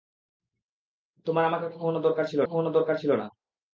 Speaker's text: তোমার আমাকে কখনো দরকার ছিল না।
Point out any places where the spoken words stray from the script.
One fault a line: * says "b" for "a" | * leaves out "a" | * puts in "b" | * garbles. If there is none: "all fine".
* puts in "কখনো দরকার ছিল"